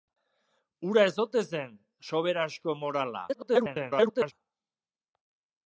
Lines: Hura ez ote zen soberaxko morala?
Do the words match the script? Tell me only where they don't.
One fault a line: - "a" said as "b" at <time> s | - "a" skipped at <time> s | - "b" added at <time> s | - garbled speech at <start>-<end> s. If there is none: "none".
- garbled speech at 3.3-4.3 s